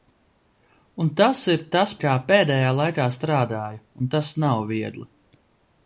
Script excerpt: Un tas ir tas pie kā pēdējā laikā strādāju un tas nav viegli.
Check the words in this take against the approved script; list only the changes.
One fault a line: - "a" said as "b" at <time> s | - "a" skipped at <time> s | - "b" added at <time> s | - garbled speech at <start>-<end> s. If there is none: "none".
- "pie" skipped at 1.9 s